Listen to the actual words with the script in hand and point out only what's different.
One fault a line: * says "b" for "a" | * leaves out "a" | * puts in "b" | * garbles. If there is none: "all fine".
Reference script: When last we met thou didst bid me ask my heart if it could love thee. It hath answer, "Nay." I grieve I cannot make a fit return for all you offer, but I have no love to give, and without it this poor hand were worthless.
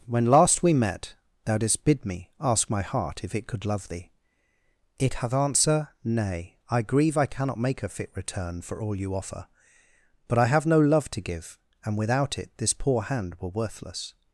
all fine